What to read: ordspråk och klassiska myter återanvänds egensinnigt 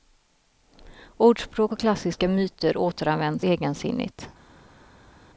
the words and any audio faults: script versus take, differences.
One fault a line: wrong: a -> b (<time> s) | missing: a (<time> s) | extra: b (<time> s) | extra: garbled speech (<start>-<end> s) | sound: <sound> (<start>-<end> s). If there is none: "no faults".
no faults